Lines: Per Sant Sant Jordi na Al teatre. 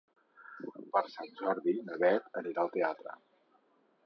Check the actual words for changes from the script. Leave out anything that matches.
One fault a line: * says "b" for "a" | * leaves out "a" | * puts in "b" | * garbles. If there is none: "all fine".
* leaves out "Sant"
* puts in "Beth anirà"